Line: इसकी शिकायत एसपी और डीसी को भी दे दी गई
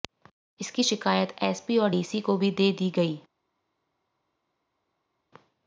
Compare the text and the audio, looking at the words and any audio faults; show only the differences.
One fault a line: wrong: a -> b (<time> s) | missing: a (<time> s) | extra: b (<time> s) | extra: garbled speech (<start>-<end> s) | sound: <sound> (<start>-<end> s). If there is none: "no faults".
no faults